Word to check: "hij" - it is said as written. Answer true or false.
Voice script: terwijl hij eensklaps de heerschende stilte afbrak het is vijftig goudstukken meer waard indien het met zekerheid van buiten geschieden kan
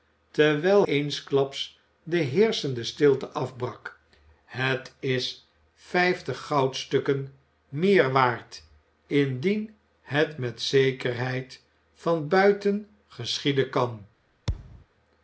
false